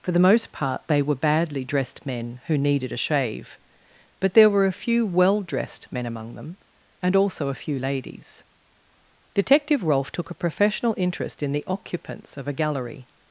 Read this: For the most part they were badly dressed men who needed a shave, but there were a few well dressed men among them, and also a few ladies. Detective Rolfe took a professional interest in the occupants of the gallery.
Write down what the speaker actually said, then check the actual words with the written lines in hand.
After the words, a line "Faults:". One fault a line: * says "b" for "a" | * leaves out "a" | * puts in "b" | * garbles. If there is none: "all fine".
For the most part they were badly dressed men who needed a shave, but there were a few well dressed men among them, and also a few ladies. Detective Rolfe took a professional interest in the occupants of a gallery.
Faults:
* says "a" for "the"